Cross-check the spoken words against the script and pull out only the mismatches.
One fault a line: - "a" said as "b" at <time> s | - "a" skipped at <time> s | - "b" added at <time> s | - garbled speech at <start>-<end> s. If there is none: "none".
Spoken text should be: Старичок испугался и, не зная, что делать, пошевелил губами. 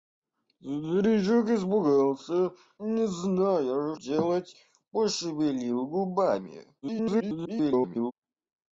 - "и" skipped at 2.5 s
- "что" skipped at 3.9 s
- garbled speech at 6.8-8.1 s